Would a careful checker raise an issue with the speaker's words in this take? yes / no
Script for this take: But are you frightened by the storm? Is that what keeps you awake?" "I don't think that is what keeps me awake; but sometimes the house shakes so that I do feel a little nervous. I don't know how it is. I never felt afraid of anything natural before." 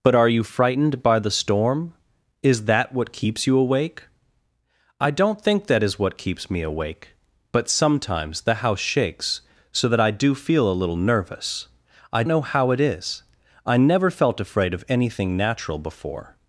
yes